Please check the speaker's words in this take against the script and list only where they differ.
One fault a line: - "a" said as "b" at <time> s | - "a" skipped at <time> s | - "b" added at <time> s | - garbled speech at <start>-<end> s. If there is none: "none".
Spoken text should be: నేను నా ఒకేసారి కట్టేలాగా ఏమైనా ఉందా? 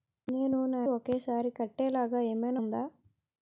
none